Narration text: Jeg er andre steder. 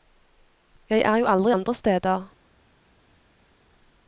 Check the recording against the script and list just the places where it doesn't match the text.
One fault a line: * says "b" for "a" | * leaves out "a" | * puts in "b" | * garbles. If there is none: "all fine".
* puts in "jo aldri"